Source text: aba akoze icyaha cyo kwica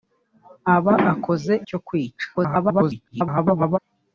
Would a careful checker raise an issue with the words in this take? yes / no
yes